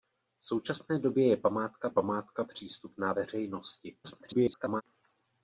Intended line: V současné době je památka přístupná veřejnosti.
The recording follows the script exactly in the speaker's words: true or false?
false